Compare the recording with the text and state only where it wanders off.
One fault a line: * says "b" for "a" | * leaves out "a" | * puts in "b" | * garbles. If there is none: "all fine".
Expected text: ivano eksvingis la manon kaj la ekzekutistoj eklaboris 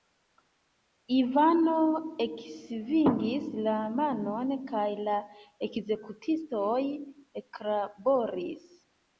all fine